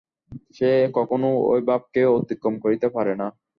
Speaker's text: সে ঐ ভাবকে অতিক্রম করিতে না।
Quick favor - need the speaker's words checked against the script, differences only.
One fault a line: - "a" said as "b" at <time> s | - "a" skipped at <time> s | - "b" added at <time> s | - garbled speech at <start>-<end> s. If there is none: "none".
- "কখনও" added at 1.0 s
- "পারে" added at 3.0 s